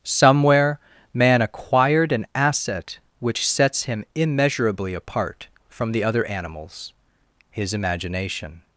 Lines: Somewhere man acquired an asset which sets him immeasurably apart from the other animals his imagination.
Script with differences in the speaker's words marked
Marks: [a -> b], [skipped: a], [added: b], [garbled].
Somewhere man acquired an asset which sets him immeasurably apart from the other animals his imagination.